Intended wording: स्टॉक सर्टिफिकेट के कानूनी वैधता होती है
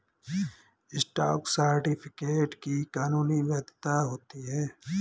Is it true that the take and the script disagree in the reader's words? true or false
true